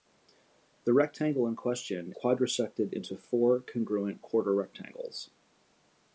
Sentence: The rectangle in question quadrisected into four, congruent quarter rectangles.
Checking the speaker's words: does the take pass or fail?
pass